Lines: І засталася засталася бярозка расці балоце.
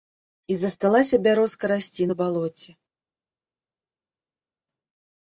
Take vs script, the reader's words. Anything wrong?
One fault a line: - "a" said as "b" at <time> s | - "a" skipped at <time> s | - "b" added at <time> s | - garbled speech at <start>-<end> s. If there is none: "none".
- "засталася" skipped at 1.2 s
- "на" added at 2.1 s